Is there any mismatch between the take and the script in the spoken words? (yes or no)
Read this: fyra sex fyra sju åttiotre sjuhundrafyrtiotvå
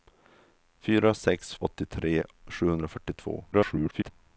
yes